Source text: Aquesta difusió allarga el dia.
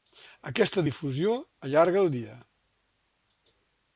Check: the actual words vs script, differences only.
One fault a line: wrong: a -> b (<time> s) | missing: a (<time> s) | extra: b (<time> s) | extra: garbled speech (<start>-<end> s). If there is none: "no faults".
no faults